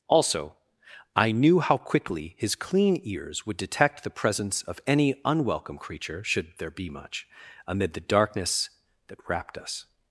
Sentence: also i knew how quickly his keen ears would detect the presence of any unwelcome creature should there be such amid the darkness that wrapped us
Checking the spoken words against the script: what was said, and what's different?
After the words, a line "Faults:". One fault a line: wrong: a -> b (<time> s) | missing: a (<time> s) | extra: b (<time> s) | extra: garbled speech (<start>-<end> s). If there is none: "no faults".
also i knew how quickly his clean ears would detect the presence of any unwelcome creature should there be much amid the darkness that wrapped us
Faults:
wrong: keen -> clean (2.5 s)
wrong: such -> much (6.9 s)